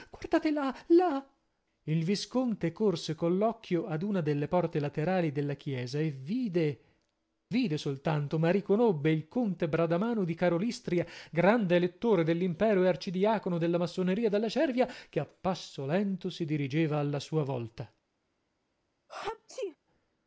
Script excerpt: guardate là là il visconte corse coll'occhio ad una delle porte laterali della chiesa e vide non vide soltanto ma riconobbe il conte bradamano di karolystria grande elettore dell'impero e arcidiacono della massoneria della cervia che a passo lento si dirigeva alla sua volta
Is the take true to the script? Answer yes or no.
no